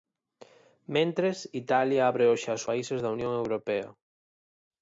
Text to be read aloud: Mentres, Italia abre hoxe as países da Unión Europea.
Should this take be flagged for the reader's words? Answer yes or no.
no